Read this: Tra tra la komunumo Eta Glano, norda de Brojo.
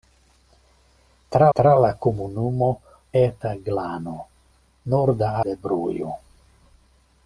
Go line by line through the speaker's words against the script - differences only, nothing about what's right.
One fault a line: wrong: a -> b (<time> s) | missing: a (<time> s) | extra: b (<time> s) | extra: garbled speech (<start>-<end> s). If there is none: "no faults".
no faults